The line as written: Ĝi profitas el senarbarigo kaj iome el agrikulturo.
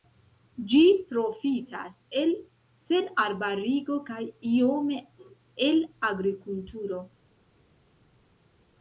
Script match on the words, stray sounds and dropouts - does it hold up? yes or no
yes